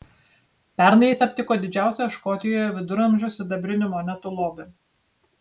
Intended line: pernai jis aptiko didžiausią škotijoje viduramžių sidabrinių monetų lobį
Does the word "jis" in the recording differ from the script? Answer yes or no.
no